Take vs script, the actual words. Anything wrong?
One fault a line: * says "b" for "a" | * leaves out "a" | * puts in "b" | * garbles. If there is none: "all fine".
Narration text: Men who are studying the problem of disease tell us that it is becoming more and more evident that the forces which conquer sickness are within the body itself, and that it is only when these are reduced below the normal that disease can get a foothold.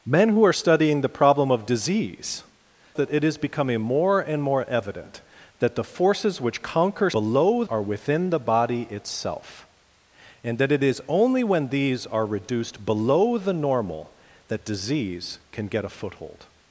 * leaves out "tell us"
* says "below" for "sickness"